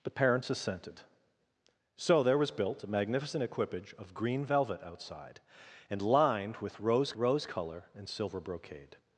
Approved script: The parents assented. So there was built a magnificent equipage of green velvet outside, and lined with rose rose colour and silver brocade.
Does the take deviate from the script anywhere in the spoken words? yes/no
no